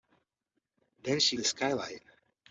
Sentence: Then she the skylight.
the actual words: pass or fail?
pass